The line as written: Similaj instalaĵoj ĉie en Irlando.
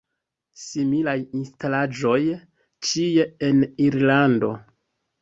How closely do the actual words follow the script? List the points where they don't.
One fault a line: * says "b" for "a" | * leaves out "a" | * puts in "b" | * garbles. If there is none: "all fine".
all fine